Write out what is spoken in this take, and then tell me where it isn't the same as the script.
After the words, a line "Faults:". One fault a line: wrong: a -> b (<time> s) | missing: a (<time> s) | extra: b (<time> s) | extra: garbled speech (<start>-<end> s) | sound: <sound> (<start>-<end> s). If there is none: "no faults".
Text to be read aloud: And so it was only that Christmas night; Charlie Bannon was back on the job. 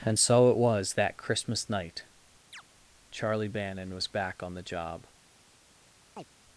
And so it was that Christmas night; Charlie Bannon was back on the job.
Faults:
missing: only (0.9 s)
sound: chirp (2.5-2.6 s)
sound: chirp (6.2-6.3 s)